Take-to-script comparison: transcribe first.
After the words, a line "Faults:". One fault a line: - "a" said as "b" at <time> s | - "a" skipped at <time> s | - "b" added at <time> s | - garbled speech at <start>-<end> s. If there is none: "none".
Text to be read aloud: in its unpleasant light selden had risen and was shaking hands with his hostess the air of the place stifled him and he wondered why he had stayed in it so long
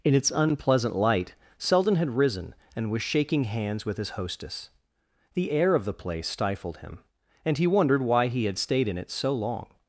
in its unpleasant light selden had risen and was shaking hands with his hostess the air of the place stifled him and he wondered why he had stayed in it so long
Faults:
none